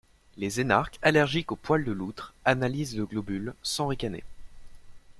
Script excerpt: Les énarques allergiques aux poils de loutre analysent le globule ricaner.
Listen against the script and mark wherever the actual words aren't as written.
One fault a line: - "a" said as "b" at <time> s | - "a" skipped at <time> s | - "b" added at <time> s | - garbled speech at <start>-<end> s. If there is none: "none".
- "sans" added at 3.6 s